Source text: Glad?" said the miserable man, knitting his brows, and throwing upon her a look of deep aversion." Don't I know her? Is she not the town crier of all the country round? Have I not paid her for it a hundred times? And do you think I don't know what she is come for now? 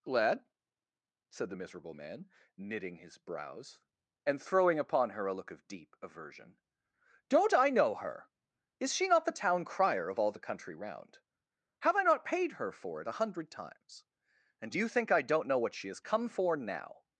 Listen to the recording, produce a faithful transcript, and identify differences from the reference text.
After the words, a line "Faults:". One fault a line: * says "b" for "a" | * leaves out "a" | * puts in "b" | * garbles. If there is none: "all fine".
Lad?" said the miserable man, knitting his brows, and throwing upon her a look of deep aversion." Don't I know her? Is she not the town crier of all the country round? Have I not paid her for it a hundred times? And do you think I don't know what she has come for now?
Faults:
* says "Lad" for "Glad"
* says "has" for "is"